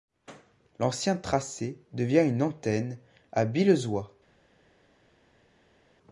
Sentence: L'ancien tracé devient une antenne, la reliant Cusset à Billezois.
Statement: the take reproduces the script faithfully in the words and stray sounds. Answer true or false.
false